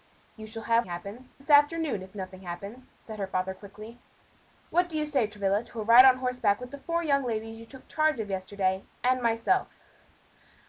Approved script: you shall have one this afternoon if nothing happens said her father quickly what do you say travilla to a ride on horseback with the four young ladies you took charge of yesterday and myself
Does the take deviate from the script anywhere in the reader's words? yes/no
yes